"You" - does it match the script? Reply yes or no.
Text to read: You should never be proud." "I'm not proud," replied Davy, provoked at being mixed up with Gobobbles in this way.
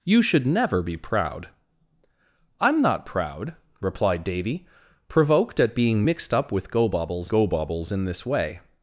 yes